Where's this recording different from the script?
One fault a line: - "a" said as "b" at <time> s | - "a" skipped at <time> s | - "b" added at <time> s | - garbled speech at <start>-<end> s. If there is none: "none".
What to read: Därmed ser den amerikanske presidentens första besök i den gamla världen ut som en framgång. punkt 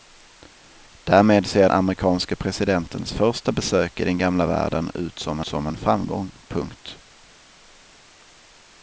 - "den" skipped at 1.7 s
- "som" added at 5.4 s